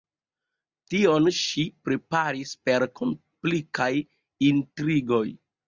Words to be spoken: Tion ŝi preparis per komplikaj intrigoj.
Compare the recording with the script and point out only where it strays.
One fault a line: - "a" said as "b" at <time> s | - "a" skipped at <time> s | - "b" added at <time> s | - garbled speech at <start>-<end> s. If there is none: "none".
none